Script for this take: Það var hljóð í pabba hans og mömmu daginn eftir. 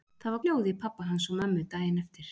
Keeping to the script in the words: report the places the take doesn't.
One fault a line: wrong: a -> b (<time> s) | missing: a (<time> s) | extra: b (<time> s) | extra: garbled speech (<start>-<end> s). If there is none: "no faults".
no faults